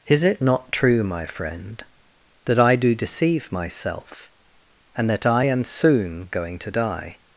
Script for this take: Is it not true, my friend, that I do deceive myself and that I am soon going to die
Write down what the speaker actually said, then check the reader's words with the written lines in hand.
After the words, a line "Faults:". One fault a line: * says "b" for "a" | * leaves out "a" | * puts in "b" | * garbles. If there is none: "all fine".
Is it not true, my friend, that I do deceive myself and that I am soon going to die
Faults:
all fine